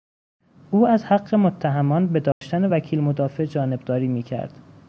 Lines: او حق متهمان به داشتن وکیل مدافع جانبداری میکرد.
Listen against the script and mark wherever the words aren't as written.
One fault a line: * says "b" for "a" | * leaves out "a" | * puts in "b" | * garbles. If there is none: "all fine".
* puts in "از"